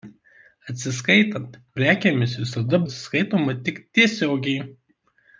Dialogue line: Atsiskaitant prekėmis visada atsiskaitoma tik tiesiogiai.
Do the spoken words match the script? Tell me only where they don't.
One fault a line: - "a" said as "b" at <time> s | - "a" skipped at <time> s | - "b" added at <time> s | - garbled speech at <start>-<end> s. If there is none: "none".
none